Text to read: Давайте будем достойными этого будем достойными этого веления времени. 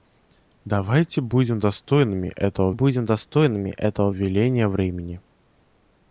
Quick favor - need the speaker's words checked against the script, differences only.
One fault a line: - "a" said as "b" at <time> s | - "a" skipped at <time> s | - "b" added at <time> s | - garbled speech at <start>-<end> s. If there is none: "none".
none